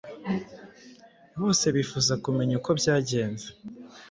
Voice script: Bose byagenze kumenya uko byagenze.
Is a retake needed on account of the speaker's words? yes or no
yes